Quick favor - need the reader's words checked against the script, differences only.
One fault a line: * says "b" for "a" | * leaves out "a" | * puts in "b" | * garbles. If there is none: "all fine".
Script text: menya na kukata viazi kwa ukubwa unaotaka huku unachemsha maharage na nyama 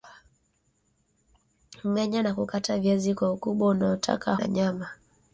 * leaves out "huku unachemsha maharage"